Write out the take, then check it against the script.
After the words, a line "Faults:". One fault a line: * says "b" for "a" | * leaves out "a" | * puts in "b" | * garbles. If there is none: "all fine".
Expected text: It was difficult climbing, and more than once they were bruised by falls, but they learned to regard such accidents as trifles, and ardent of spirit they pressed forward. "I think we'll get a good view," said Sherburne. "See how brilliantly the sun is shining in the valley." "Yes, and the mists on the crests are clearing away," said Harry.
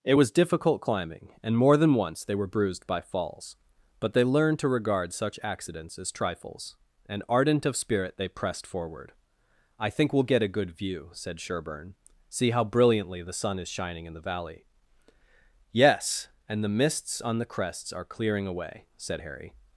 It was difficult climbing, and more than once they were bruised by falls, but they learned to regard such accidents as trifles, and ardent of spirit they pressed forward. "I think we'll get a good view," said Sherburne. "See how brilliantly the sun is shining in the valley." "Yes, and the mists on the crests are clearing away," said Harry.
Faults:
all fine